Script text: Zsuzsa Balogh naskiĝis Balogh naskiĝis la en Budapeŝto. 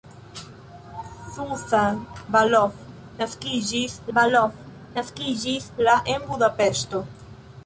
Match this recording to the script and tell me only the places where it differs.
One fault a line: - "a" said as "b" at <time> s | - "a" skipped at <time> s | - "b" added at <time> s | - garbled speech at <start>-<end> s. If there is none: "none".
none